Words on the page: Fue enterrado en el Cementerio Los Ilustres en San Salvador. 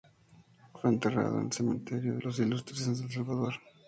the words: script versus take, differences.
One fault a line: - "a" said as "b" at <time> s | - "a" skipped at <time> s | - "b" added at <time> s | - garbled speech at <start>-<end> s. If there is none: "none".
none